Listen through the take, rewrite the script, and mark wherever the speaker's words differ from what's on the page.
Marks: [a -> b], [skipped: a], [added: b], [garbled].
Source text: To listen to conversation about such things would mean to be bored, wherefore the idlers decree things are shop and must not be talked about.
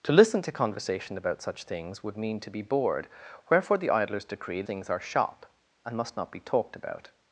To listen to conversation about such things would mean to be bored, wherefore the idlers decree things are shop and must not be talked about.